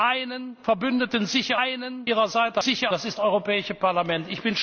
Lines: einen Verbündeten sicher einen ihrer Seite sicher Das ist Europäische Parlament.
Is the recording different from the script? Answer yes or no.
no